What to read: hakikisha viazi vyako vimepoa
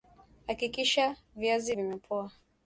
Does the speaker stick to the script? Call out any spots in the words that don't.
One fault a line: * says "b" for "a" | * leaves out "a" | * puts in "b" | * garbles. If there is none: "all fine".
* leaves out "vyako"